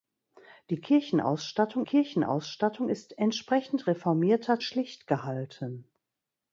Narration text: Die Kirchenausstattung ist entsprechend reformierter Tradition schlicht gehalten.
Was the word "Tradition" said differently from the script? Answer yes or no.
yes